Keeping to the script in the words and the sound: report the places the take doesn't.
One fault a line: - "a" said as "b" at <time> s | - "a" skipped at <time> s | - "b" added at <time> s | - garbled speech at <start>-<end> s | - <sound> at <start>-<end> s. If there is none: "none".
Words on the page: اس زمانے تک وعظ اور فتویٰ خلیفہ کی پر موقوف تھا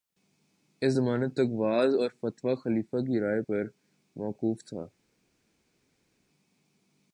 - "رائے" added at 3.2 s